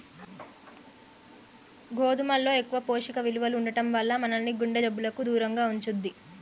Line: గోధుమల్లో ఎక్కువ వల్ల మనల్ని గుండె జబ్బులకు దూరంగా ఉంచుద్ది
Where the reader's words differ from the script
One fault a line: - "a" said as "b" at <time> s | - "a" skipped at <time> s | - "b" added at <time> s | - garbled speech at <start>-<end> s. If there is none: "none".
- "పోషక విలువలు ఉండటం" added at 2.9 s